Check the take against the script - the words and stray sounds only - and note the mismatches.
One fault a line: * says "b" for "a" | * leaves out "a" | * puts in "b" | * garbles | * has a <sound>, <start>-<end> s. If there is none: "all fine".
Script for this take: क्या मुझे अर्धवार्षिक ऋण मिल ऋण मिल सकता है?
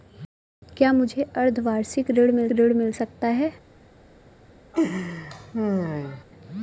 * has a laugh, 4.7-6.2 s